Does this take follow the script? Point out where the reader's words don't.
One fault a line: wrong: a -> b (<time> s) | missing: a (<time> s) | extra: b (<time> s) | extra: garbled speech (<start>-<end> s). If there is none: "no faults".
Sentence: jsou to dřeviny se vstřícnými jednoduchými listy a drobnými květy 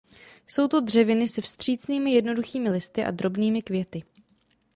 no faults